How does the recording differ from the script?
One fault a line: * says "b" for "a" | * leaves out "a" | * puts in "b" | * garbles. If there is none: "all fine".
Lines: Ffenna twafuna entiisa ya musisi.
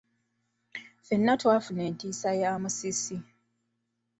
all fine